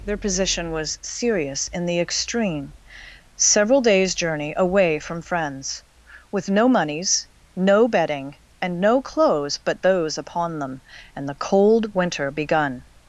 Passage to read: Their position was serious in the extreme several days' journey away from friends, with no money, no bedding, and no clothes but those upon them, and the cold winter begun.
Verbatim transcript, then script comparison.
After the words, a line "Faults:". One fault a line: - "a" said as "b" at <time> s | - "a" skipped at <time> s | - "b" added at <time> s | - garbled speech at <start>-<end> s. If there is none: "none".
Their position was serious in the extreme several days' journey away from friends, with no moneys, no bedding, and no clothes but those upon them, and the cold winter begun.
Faults:
- "money" said as "moneys" at 6.7 s